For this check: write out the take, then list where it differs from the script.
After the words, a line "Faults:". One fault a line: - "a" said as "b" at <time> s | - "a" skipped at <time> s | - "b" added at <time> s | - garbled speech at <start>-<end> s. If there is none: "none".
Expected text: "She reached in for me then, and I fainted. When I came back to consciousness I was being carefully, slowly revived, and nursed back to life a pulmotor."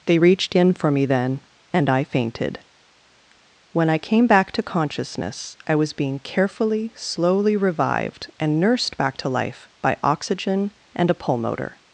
"They reached in for me then, and I fainted. When I came back to consciousness I was being carefully, slowly revived, and nursed back to life by oxygen and a pulmotor."
Faults:
- "She" said as "They" at 0.1 s
- "by oxygen and" added at 9.8 s